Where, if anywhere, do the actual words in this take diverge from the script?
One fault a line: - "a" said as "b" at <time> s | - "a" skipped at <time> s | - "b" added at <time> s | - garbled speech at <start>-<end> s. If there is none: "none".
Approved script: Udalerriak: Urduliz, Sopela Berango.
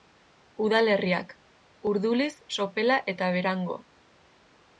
- "eta" added at 3.2 s